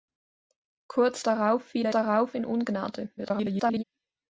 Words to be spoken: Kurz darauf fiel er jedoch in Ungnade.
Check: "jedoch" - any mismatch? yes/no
yes